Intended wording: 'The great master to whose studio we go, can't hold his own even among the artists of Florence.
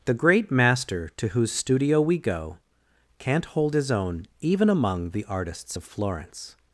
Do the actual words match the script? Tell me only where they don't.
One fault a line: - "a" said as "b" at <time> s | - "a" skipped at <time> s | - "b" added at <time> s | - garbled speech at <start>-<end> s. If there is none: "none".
none